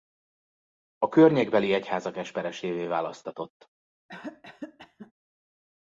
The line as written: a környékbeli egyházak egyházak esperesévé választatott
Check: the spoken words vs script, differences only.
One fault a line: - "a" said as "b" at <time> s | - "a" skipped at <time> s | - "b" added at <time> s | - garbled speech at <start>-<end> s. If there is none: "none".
- "egyházak" skipped at 2.2 s